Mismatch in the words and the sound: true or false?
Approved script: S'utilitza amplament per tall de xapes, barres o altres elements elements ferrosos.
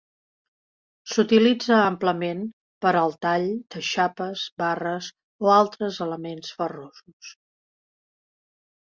true